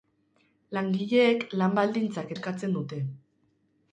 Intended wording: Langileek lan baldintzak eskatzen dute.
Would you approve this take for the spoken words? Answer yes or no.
yes